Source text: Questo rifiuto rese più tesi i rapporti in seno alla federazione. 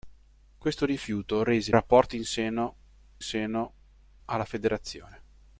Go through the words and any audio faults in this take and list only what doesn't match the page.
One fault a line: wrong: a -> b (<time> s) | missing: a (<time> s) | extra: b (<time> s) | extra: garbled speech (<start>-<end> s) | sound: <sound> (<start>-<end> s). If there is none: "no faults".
missing: più tesi i (1.8 s)
extra: seno (3.2 s)